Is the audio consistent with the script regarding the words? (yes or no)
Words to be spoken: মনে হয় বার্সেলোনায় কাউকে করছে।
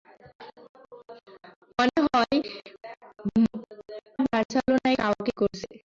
yes